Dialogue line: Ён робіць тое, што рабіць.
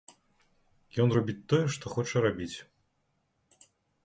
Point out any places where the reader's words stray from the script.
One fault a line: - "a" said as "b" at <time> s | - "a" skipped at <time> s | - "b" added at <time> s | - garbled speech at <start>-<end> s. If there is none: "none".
- "хоча" added at 2.0 s